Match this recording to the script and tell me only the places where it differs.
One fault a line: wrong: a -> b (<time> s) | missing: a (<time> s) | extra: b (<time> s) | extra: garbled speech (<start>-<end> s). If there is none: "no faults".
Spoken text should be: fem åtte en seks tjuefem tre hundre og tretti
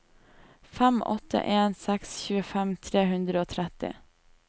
no faults